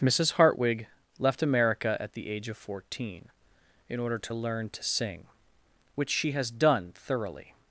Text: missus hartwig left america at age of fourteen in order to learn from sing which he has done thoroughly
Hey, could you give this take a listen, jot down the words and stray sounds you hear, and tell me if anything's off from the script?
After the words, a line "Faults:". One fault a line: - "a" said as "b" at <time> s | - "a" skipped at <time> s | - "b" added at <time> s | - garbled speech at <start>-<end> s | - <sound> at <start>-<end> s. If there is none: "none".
missus hartwig left america at the age of fourteen in order to learn to sing which she has done thoroughly
Faults:
- "the" added at 2.1 s
- "from" said as "to" at 4.7 s
- "he" said as "she" at 6.1 s